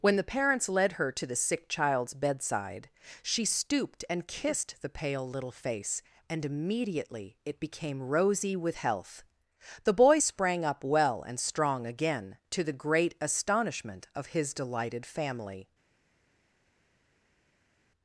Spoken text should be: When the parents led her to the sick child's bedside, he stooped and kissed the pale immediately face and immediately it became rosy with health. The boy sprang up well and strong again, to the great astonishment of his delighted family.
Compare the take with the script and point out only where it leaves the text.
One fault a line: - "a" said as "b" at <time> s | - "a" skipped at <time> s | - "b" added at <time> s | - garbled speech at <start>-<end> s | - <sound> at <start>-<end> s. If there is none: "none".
- "he" said as "she" at 3.2 s
- "immediately" said as "little" at 5.3 s